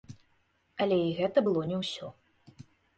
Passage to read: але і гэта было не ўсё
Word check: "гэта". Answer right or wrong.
right